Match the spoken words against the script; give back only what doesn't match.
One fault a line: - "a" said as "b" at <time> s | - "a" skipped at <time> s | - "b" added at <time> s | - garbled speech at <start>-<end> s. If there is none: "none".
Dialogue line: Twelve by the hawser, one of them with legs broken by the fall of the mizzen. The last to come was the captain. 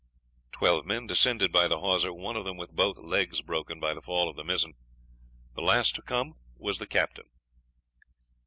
- "men descended" added at 0.9 s
- "both" added at 2.8 s